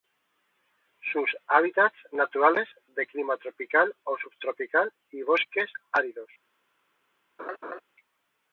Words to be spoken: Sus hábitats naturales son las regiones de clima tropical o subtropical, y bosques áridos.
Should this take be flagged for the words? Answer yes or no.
yes